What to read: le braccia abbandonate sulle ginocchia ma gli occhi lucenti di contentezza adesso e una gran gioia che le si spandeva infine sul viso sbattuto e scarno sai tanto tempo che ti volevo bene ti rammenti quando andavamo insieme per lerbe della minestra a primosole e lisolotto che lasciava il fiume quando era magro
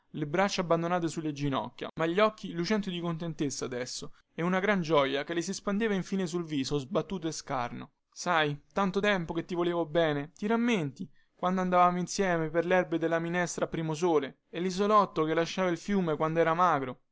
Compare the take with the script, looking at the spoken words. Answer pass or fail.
pass